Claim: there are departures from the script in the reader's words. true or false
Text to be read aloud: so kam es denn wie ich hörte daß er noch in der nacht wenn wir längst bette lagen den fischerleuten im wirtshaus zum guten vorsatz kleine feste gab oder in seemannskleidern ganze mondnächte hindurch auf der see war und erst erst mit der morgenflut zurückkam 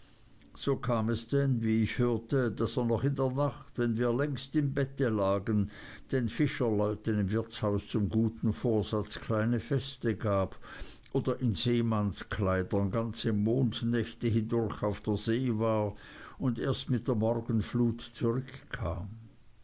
true